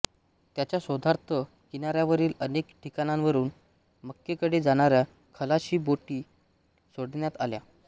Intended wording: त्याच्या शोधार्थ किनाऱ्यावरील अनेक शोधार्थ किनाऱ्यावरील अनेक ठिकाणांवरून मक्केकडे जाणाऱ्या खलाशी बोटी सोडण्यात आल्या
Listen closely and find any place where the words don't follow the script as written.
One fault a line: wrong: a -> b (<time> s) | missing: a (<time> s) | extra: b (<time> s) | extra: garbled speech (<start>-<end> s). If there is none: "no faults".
missing: शोधार्थ किनाऱ्यावरील अनेक (2.7 s)